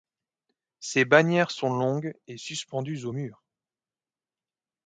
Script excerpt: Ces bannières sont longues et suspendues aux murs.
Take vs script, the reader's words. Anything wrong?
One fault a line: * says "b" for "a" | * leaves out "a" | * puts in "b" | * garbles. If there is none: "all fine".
all fine